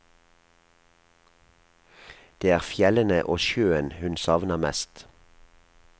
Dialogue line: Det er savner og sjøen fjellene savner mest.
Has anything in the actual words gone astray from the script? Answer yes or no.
yes